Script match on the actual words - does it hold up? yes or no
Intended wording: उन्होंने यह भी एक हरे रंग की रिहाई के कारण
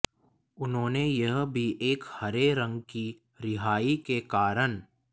yes